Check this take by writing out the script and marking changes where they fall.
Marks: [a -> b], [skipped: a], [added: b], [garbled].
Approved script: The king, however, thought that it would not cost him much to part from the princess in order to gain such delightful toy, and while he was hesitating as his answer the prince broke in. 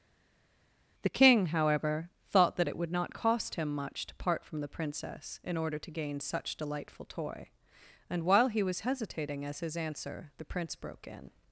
The king, however, thought that it would not cost him much to part from the princess in order to gain such delightful toy, and while he was hesitating as his answer the prince broke in.